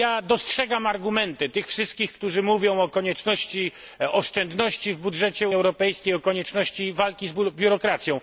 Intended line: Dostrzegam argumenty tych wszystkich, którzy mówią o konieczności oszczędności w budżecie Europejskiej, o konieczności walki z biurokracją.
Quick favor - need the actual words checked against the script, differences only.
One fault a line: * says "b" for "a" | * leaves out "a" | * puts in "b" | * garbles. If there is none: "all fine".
all fine